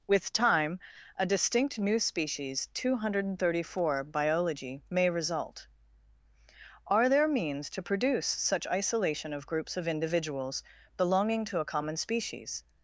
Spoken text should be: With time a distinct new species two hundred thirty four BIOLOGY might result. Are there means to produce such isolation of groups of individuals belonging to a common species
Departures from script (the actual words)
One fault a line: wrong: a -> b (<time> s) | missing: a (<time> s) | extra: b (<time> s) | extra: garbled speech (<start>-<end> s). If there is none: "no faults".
wrong: might -> may (4.9 s)